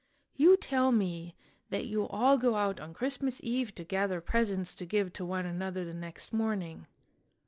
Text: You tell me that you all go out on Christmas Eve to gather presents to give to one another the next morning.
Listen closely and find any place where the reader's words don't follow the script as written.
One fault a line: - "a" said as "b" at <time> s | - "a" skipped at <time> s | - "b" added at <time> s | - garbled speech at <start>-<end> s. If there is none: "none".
none